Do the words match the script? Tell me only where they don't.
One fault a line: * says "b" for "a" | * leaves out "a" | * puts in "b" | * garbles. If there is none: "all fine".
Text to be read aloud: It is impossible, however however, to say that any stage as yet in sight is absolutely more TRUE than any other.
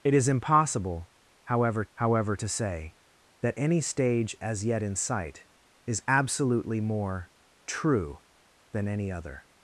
all fine